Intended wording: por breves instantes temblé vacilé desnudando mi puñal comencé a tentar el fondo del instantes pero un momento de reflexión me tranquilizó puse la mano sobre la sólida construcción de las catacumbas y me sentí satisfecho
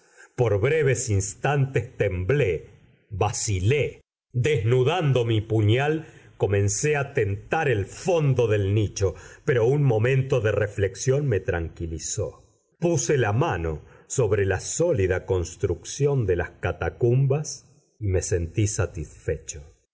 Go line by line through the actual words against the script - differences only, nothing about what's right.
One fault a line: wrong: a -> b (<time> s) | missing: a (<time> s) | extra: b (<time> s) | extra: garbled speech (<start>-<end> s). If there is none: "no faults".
wrong: instantes -> nicho (8.7 s)